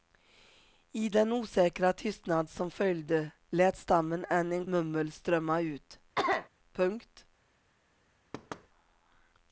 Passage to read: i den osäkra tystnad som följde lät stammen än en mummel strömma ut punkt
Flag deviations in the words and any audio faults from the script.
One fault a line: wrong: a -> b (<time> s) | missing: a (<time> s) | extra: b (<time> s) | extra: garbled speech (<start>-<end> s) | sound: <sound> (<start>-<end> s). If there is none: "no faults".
sound: cough (6.1-6.5 s)
sound: thud (8.3-8.7 s)